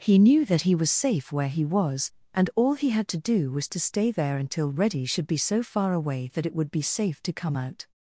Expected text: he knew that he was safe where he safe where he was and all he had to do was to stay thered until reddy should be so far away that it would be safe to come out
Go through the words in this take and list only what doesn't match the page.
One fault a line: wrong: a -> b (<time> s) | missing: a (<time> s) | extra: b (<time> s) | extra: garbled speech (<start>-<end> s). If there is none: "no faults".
missing: safe where he (1.6 s)
wrong: thered -> there (4.1 s)